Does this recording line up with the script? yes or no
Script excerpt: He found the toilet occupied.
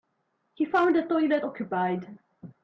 yes